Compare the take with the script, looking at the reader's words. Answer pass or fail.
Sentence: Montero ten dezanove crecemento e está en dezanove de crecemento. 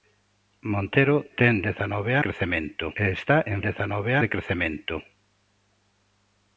pass